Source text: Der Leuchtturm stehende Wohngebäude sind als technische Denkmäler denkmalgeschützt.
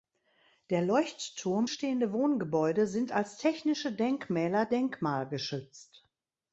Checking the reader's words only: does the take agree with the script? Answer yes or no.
yes